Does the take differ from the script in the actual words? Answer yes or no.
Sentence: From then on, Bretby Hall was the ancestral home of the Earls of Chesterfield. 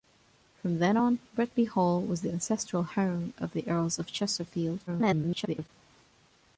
yes